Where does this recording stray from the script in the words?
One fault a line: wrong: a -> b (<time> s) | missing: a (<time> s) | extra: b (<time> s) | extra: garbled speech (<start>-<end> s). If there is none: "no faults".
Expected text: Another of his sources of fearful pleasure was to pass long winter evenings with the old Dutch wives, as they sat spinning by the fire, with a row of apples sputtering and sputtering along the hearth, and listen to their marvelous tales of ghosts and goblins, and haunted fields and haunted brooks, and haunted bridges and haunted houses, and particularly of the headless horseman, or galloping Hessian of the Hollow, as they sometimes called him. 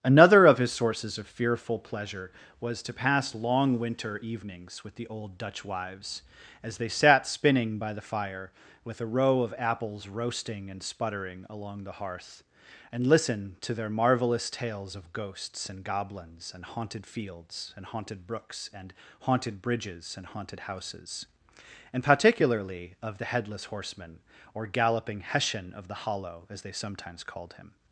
wrong: sputtering -> roasting (10.1 s)